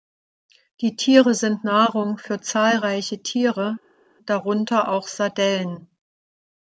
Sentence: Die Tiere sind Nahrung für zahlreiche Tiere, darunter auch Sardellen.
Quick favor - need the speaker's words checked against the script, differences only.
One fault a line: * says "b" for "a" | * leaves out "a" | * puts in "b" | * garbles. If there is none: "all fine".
all fine